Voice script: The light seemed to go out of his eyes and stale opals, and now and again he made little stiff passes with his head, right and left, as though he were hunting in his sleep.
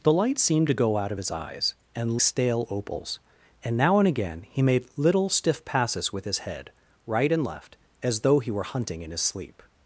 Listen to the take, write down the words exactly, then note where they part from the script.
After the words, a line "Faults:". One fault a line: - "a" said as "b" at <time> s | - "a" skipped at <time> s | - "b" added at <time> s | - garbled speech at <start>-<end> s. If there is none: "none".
The light seemed to go out of his eyes and stale opals, and now and again he made little stiff passes with his head, right and left, as though he were hunting in his sleep.
Faults:
none